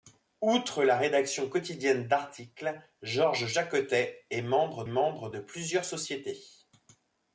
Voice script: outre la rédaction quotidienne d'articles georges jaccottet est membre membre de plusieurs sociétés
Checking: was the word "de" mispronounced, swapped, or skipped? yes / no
no